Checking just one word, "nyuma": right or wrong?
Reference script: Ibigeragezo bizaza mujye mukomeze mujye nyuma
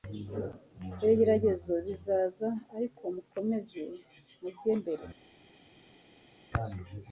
wrong